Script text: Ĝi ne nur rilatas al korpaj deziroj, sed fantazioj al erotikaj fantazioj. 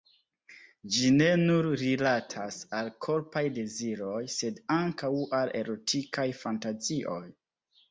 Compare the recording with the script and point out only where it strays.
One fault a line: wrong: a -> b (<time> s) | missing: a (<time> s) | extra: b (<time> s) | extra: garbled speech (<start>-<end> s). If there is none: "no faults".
wrong: fantazioj -> ankaŭ (4.8 s)